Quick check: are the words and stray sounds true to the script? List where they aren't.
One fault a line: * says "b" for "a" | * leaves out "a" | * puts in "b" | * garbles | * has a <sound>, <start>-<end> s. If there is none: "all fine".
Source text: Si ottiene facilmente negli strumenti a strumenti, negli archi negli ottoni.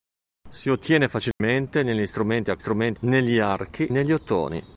* has a dropout, 1.3-1.4 s